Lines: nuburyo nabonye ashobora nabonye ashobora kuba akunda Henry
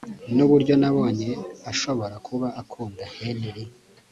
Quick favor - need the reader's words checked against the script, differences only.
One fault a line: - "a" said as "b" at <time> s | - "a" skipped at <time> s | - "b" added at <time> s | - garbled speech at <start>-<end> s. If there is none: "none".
- "nabonye ashobora" skipped at 2.1 s